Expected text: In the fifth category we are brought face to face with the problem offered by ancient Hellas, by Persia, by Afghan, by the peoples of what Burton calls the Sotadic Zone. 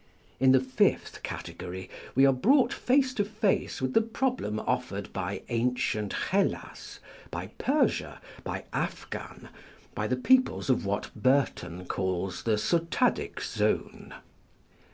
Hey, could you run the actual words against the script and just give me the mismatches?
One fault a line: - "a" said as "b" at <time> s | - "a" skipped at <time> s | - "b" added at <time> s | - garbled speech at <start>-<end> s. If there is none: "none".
none